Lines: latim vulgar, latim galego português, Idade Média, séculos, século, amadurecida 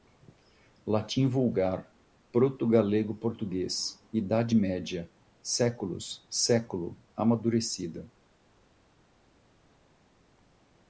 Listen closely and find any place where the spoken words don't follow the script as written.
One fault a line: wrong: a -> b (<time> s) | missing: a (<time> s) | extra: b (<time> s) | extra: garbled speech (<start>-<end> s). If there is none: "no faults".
wrong: latim -> proto (2.3 s)